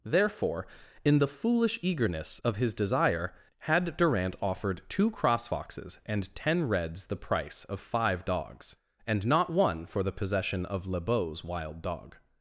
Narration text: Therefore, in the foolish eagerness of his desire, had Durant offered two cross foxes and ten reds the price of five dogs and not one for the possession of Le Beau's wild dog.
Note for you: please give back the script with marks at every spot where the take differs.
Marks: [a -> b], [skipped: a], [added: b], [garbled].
Therefore, in the foolish eagerness of his desire, had Durant offered two cross foxes and ten reds the price of five dogs and not one for the possession of Le Beau's wild dog.